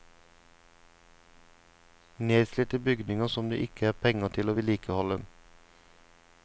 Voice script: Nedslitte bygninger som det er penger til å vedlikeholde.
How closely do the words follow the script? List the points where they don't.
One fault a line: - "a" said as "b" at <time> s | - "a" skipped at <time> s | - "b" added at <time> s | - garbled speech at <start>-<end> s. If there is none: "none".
- "ikke" added at 3.7 s